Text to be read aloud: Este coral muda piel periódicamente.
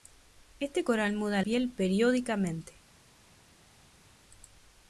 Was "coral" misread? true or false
false